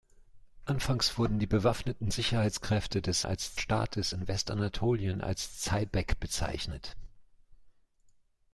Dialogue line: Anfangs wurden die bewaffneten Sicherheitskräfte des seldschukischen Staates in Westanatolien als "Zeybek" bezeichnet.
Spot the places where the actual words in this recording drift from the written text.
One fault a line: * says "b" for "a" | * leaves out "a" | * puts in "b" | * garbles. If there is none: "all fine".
* says "als" for "seldschukischen"